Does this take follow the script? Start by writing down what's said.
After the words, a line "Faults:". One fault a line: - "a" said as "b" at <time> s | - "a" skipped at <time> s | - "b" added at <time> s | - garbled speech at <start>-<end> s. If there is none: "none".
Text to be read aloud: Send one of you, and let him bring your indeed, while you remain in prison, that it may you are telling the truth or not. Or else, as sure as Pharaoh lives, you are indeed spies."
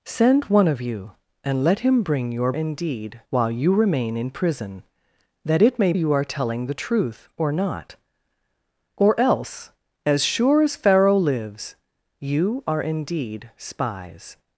Send one of you, and let him bring your indeed, while you remain in prison, that it may you are telling the truth or not. Or else, as sure as Pharaoh lives, you are indeed spies."
Faults:
none